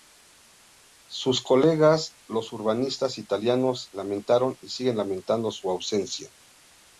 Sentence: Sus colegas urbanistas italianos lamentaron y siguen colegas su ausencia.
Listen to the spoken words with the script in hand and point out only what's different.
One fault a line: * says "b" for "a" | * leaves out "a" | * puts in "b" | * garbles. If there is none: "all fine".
* puts in "los"
* says "lamentando" for "colegas"